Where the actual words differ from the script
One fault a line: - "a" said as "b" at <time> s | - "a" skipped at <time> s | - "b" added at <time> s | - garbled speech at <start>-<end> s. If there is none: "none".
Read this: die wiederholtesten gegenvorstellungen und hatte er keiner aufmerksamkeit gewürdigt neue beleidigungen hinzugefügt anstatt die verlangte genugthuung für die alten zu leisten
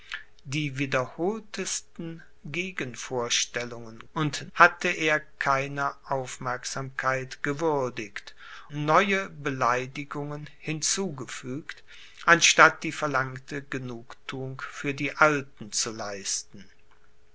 none